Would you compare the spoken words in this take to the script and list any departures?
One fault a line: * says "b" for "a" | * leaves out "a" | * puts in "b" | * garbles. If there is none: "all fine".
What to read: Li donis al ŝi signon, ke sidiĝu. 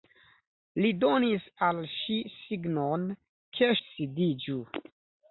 all fine